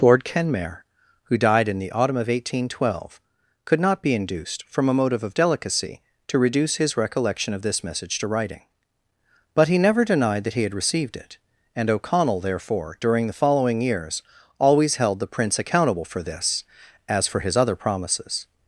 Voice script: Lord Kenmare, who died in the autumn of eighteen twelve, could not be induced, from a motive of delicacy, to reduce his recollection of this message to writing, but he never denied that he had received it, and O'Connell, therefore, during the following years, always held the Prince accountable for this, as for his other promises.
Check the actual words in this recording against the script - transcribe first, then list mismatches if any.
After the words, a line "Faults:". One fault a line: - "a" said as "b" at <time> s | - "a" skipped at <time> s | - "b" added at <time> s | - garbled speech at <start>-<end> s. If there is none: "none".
Lord Kenmare, who died in the autumn of eighteen twelve, could not be induced, from a motive of delicacy, to reduce his recollection of this message to writing, but he never denied that he had received it, and O'Connell, therefore, during the following years, always held the Prince accountable for this, as for his other promises.
Faults:
none